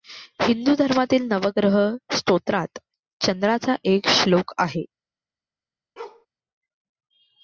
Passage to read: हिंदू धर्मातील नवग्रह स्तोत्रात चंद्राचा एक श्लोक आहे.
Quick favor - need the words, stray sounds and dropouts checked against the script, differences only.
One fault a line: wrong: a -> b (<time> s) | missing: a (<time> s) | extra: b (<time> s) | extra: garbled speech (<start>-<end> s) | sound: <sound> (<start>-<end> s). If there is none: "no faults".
sound: bark (6.0-6.3 s)